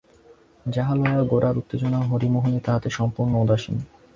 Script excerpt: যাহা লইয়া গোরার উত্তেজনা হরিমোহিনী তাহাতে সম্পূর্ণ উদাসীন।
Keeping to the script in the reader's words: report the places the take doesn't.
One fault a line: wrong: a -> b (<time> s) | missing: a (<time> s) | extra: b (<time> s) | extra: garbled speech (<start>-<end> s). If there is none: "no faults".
no faults